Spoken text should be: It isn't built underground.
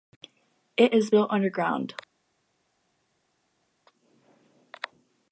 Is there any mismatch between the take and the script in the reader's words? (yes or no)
yes